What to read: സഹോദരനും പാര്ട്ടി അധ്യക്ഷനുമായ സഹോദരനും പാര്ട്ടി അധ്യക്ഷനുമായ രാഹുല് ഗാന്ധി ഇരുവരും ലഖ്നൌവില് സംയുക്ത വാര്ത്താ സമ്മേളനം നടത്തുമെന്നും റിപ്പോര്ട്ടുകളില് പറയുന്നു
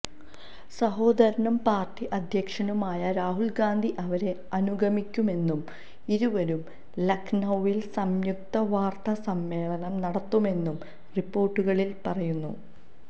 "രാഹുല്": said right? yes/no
no